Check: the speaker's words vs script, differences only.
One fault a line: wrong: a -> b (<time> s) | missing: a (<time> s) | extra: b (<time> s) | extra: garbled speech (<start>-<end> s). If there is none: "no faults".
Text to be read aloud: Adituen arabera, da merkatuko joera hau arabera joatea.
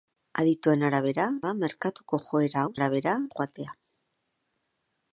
no faults